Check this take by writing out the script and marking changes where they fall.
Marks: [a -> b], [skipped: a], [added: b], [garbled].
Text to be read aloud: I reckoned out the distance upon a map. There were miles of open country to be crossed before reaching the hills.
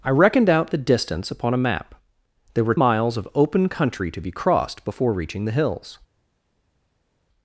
I reckoned out the distance upon a map. There were miles of open country to be crossed before reaching the hills.